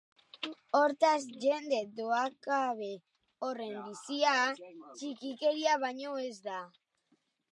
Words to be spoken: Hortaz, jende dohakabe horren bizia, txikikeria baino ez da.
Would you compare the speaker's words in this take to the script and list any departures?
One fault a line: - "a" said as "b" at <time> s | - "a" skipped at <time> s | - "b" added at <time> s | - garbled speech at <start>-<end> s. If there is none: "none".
none